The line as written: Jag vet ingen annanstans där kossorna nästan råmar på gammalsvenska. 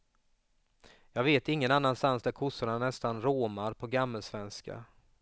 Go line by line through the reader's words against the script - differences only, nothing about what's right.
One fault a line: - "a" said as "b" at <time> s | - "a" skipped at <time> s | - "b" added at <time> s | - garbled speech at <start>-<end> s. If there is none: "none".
none